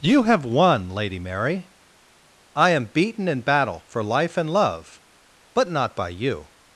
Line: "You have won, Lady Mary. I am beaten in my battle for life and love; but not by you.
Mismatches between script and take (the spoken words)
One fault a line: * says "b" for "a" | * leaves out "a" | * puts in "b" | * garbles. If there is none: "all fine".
* leaves out "my"